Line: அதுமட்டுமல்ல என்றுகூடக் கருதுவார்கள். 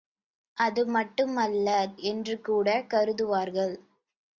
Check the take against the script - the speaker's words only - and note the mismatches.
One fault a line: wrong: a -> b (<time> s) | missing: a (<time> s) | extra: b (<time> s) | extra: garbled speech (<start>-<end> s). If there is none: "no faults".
no faults